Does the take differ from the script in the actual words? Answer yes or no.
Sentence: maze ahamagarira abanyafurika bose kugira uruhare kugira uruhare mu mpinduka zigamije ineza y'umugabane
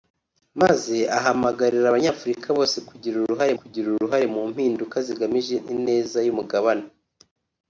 no